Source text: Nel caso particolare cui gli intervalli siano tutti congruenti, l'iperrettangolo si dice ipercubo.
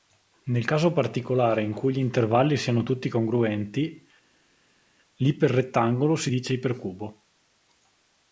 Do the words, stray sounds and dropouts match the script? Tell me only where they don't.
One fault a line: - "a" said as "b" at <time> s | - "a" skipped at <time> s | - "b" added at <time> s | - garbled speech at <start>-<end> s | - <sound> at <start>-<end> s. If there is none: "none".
- "in" added at 1.6 s